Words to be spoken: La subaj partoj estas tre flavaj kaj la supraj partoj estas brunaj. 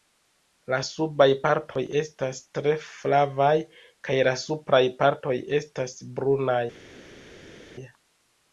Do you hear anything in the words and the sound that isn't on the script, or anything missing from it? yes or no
no